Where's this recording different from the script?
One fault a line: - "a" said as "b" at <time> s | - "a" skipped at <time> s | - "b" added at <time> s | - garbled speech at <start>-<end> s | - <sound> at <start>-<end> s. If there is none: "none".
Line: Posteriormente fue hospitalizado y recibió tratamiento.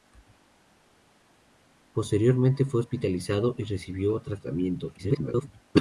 - garbled speech at 5.0-5.5 s